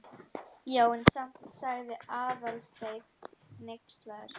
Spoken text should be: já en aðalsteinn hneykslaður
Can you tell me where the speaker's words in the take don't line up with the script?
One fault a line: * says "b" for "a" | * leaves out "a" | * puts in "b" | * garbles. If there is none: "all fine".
* puts in "samt sagði"